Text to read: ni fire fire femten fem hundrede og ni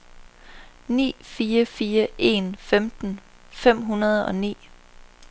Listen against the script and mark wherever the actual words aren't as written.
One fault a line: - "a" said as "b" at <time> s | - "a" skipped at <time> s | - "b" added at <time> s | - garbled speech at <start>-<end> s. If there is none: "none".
- "en" added at 2.2 s